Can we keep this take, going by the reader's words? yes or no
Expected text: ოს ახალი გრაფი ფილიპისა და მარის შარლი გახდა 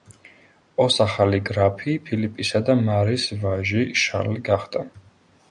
no